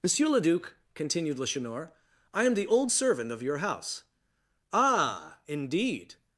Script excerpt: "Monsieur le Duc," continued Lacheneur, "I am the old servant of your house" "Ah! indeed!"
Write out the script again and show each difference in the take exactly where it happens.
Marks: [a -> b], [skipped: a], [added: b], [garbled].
"Monsieur le Duc," continued Lacheneur, "I am the old servant of your house" "Ah! indeed!"